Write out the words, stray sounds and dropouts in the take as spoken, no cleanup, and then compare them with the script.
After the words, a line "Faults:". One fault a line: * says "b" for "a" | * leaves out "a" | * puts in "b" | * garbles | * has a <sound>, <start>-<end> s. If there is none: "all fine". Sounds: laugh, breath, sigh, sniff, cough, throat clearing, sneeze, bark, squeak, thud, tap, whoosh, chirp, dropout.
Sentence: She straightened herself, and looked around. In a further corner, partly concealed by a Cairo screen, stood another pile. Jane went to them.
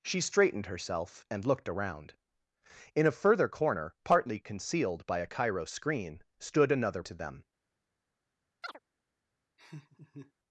She straightened herself, and looked around. In a further corner, partly concealed by a Cairo screen, stood another to them.
Faults:
* leaves out "pile Jane went"
* has a chirp, 8.6-8.8 s
* has a laugh, 9.6-10.3 s